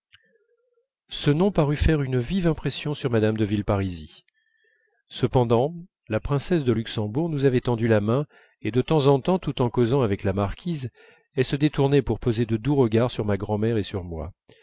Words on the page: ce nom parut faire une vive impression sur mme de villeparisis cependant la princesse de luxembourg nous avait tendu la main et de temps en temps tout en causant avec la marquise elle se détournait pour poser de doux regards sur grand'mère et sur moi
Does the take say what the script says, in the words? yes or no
no